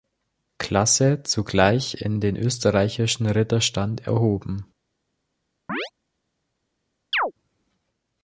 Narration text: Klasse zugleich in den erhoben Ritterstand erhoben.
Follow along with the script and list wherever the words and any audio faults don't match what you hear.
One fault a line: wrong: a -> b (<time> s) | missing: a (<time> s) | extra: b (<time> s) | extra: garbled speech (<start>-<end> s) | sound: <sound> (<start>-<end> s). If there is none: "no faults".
wrong: erhoben -> österreichischen (2.4 s)
sound: chirp (5.7-5.9 s)
sound: chirp (7.1-7.3 s)